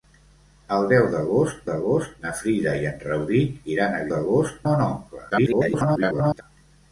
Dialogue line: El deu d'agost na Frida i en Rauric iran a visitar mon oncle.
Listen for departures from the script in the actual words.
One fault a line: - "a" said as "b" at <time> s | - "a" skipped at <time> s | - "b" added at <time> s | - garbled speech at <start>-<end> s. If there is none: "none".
- "d'agost" added at 1.7 s
- "visitar" said as "d'agost" at 4.1 s
- garbled speech at 5.3-6.4 s